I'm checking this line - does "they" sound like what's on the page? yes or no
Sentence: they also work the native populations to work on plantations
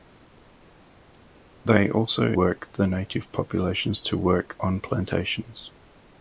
yes